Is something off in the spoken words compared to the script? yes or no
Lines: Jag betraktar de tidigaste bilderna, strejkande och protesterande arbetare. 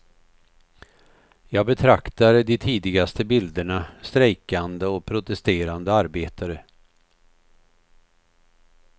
no